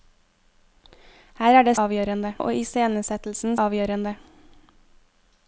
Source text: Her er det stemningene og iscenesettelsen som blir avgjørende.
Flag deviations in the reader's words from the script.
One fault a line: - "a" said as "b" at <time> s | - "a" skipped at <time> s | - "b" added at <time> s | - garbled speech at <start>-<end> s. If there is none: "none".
- "stemningene" said as "avgjørende" at 1.7 s
- "som blir" skipped at 3.6 s